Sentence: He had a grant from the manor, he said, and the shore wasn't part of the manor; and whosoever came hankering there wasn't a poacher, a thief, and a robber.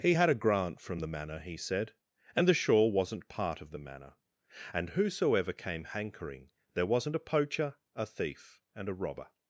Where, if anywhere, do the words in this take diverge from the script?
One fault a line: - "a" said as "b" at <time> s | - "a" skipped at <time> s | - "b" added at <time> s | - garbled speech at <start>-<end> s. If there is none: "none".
none